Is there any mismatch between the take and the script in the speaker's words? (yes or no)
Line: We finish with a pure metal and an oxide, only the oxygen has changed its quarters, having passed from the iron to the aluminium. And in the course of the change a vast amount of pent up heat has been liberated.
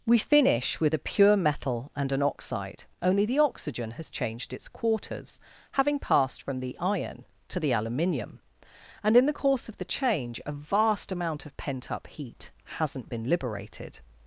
yes